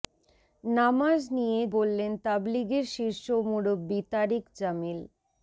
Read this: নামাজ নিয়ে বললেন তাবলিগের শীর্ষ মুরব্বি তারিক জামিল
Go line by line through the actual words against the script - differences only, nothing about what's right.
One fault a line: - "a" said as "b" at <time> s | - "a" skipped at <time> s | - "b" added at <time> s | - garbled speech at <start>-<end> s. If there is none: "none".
none